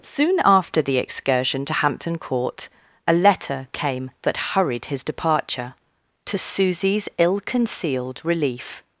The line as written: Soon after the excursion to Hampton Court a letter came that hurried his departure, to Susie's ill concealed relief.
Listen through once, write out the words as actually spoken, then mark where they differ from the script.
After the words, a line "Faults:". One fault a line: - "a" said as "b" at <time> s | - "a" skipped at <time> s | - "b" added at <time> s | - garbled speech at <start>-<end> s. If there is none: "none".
Soon after the excursion to Hampton Court a letter came that hurried his departure, to Susie's ill concealed relief.
Faults:
none